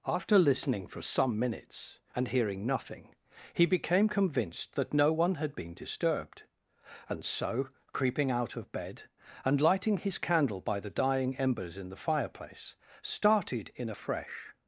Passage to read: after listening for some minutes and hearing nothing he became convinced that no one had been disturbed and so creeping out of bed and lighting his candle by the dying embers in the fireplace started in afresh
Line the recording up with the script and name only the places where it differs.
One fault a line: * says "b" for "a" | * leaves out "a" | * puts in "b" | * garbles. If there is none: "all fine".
all fine